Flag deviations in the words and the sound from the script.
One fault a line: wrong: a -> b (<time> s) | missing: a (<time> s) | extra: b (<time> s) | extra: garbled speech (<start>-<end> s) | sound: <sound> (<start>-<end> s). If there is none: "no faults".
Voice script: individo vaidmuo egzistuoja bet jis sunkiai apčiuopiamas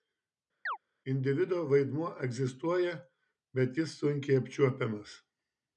sound: chirp (0.7-0.8 s)